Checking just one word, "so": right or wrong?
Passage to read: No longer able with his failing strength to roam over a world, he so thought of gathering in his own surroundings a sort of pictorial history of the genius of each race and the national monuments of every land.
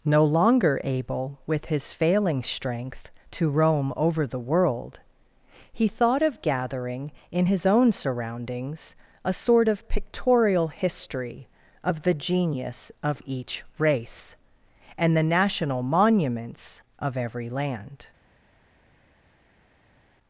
wrong